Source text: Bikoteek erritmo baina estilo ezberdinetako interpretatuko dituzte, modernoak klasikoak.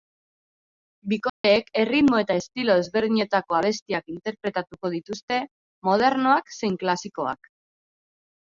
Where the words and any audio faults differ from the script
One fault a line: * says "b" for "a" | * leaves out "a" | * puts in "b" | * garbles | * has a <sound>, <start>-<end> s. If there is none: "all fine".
* has a dropout, 1.3-1.4 s
* says "eta" for "baina"
* puts in "abestiak"
* puts in "zein"